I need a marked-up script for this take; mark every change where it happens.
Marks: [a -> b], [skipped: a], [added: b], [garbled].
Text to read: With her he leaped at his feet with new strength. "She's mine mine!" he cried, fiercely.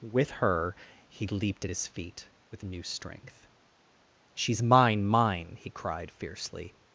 With her he leaped at his feet with new strength. "She's mine mine!" he cried, fiercely.